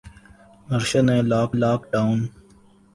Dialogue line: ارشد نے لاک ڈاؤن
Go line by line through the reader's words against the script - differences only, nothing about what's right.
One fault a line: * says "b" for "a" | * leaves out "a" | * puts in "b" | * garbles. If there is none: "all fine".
* puts in "لاک"